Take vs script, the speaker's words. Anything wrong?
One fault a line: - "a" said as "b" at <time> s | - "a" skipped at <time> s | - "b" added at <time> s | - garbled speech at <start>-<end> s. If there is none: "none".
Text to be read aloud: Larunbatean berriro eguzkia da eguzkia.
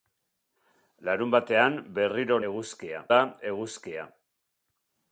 none